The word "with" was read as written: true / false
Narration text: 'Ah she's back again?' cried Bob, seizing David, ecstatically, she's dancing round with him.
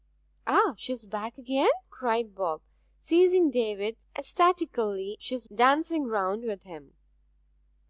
true